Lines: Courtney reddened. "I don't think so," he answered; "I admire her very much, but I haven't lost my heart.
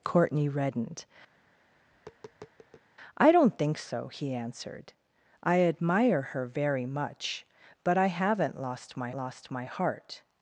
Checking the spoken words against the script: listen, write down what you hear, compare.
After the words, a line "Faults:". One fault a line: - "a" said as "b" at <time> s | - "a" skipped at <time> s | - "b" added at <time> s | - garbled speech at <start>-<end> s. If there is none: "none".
Courtney reddened. "I don't think so," he answered; "I admire her very much, but I haven't lost my lost my heart.
Faults:
- "lost my" added at 9.1 s